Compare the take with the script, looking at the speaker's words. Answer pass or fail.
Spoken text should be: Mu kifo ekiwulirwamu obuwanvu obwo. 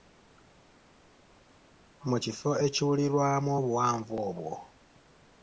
pass